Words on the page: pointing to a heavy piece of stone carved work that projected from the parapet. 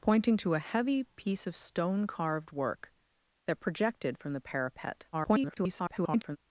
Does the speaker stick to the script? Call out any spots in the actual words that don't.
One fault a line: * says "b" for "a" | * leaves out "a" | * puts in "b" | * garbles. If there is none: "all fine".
* garbles